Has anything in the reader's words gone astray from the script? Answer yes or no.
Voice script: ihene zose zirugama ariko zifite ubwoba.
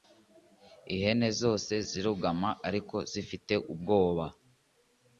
no